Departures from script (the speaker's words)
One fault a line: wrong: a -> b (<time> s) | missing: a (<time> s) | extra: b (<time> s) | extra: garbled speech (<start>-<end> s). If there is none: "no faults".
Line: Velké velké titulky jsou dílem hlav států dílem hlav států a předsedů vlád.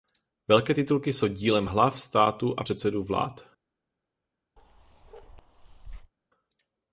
missing: velké (0.7 s)
missing: dílem hlav států (2.5 s)